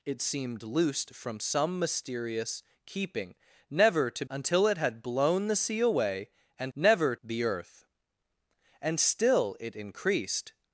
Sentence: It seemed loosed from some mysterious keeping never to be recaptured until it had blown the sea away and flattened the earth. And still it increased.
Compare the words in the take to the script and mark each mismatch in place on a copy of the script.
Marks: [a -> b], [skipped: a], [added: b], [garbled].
It seemed loosed from some mysterious keeping never to [skipped: be recaptured] until it had blown the sea away and [flattened -> never] the earth. And still it increased.